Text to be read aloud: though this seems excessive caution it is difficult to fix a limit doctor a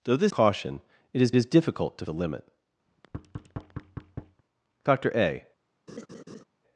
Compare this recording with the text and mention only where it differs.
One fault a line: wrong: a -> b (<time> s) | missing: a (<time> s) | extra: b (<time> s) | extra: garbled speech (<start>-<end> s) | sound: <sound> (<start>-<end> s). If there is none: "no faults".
missing: seems excessive (0.3 s)
extra: is (1.3 s)
missing: fix (2.1 s)
sound: thud (2.9-4.4 s)
sound: laugh (5.9-6.4 s)